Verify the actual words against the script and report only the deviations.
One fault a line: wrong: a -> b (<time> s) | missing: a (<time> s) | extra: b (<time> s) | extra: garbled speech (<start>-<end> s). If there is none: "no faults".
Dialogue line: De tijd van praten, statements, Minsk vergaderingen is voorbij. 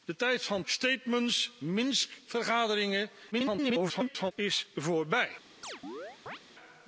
missing: praten (0.7 s)
extra: garbled speech (3.3-4.3 s)